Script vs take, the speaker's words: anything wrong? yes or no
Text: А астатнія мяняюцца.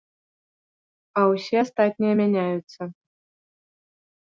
yes